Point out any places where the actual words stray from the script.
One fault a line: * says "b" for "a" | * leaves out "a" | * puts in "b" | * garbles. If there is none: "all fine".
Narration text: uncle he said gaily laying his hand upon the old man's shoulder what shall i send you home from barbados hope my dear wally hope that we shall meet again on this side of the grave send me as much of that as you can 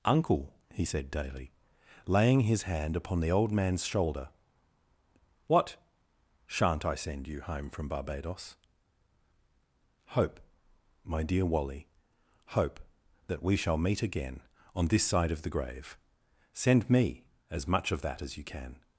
* says "daily" for "gaily"
* says "shan't" for "shall"